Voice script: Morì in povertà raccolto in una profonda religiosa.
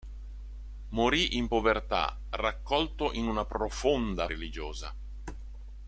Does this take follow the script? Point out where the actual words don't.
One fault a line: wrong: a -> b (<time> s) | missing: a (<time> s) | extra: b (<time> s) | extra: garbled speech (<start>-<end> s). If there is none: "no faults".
no faults